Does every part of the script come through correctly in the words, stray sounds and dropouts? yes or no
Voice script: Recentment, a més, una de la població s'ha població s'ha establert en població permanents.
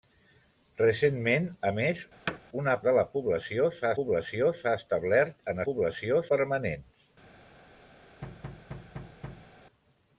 no